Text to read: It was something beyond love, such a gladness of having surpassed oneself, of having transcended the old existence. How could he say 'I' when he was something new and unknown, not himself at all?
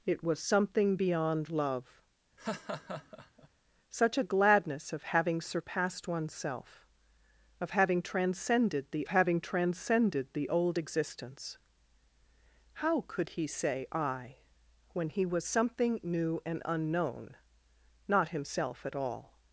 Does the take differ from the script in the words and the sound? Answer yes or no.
yes